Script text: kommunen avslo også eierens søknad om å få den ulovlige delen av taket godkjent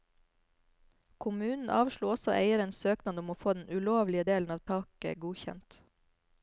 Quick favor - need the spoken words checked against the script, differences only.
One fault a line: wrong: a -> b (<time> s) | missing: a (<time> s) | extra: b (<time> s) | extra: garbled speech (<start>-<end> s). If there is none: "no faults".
no faults